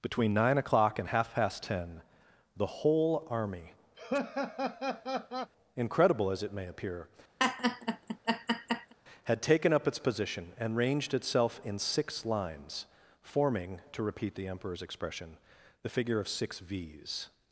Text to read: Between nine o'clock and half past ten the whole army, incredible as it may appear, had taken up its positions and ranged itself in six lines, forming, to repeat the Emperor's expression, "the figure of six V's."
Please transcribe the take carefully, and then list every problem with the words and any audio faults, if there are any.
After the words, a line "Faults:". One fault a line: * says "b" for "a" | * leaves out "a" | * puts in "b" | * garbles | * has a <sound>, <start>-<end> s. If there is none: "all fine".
Between nine o'clock and half past ten the whole army, incredible as it may appear, had taken up its position and ranged itself in six lines, forming, to repeat the Emperor's expression, "the figure of six V's."
Faults:
* has a laugh, 4.0-5.5 s
* has a laugh, 7.4-8.9 s
* says "position" for "positions"